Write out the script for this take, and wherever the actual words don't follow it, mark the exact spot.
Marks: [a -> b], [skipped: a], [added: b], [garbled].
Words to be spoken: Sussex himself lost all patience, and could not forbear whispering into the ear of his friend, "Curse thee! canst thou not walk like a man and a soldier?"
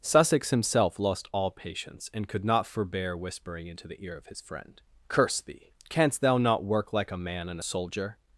Sussex himself lost all patience, and could not forbear whispering into the ear of his friend, "Curse thee! canst thou not [walk -> work] like a man and a soldier?"